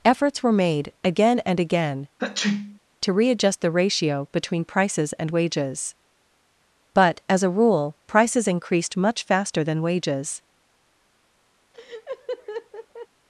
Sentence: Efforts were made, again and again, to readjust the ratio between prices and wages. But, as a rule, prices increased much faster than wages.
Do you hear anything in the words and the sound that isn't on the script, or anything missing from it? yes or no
yes